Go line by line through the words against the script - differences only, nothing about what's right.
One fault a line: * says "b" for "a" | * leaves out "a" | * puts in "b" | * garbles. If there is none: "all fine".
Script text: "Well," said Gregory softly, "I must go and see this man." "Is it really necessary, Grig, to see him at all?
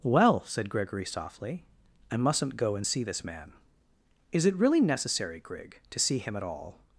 * says "mustn't" for "must"